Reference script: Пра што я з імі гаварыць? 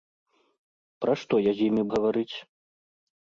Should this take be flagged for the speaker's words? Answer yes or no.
no